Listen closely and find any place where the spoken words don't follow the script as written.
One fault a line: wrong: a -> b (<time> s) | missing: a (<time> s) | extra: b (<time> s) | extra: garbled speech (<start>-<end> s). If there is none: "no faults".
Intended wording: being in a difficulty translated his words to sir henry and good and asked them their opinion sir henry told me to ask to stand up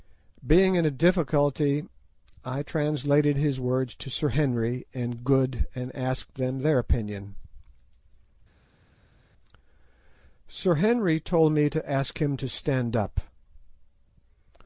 extra: i (2.4 s)
extra: him (12.2 s)